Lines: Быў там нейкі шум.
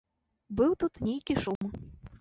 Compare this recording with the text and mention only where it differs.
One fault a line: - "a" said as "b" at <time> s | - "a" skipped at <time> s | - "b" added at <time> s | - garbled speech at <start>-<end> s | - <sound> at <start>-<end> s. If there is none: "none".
- "там" said as "тут" at 0.8 s
- dropout at 1.6-1.6 s